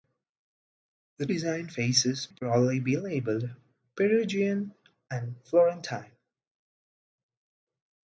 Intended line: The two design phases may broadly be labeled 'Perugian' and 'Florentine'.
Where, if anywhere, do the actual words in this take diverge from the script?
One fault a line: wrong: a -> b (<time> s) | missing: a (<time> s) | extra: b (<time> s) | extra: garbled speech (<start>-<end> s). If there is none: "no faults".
missing: two (1.3 s)
missing: may (2.3 s)